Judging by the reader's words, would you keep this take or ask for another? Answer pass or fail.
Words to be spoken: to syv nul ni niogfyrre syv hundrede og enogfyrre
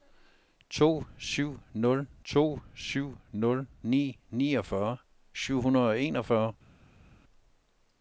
fail